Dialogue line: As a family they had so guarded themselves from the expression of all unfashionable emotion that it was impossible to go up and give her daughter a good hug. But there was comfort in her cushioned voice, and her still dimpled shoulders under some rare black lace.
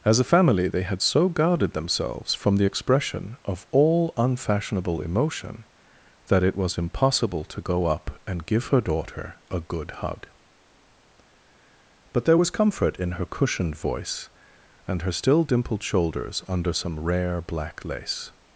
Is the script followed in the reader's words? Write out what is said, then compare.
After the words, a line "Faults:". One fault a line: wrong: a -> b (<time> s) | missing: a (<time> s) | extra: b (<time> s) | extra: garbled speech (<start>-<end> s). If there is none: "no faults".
As a family they had so guarded themselves from the expression of all unfashionable emotion that it was impossible to go up and give her daughter a good hug. But there was comfort in her cushioned voice, and her still dimpled shoulders under some rare black lace.
Faults:
no faults